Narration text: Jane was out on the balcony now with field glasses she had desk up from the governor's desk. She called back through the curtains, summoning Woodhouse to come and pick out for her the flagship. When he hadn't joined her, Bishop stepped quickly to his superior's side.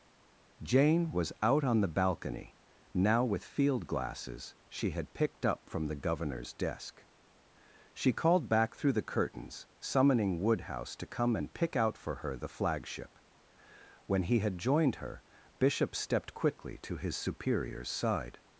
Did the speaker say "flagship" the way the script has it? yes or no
yes